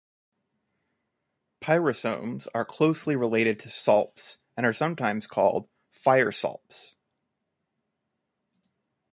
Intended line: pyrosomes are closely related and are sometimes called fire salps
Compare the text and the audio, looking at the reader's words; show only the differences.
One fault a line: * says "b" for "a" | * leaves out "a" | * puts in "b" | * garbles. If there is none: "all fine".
* puts in "to salps"